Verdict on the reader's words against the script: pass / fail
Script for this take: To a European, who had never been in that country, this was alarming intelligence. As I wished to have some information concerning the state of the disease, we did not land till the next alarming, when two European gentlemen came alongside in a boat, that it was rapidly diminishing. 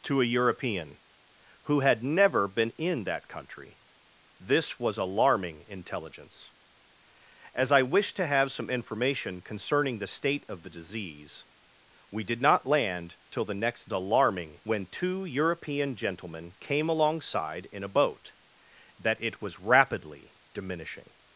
pass